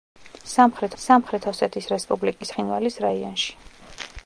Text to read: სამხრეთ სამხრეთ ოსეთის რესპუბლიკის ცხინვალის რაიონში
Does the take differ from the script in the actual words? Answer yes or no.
no